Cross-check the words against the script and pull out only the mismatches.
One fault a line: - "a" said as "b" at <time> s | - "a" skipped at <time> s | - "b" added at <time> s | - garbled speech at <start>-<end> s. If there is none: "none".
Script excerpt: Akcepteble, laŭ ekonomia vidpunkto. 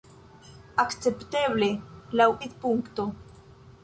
- "ekonomia" skipped at 2.3 s